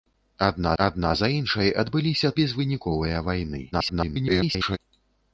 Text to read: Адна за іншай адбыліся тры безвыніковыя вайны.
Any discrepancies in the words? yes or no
yes